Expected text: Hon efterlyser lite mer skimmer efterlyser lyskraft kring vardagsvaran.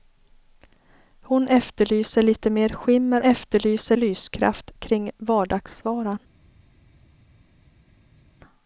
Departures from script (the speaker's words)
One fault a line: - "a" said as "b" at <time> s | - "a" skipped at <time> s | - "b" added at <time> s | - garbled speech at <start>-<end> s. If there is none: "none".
none